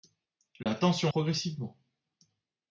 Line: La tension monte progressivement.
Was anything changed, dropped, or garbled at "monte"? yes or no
yes